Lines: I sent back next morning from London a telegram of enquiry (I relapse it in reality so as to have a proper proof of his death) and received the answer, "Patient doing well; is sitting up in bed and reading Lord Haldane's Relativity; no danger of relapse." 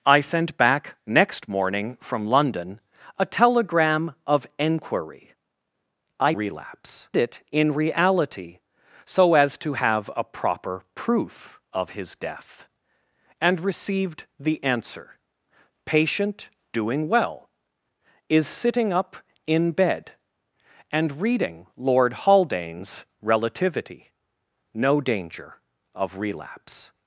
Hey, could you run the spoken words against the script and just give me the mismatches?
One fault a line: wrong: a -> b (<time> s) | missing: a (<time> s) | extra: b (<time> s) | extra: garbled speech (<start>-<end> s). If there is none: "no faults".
no faults